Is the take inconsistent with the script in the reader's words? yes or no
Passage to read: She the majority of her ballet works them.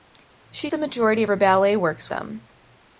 no